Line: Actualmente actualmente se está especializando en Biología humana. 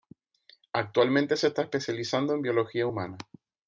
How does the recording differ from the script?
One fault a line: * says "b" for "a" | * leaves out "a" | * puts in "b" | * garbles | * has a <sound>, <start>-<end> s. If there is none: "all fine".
* leaves out "actualmente"